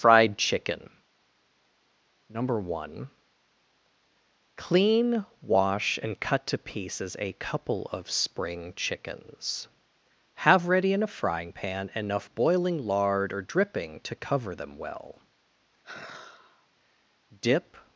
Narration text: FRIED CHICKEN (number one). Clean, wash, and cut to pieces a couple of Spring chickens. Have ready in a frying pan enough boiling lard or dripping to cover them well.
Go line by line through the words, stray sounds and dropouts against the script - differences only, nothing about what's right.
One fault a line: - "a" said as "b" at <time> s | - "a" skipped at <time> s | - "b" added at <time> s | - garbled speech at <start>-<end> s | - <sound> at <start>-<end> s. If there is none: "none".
- sigh at 15.8-16.7 s
- "Dip" added at 17.4 s